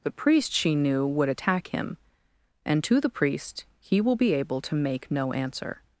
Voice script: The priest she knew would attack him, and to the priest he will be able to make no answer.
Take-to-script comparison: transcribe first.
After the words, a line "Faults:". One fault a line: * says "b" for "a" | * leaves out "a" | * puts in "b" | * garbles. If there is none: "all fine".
The priest she knew would attack him, and to the priest he will be able to make no answer.
Faults:
all fine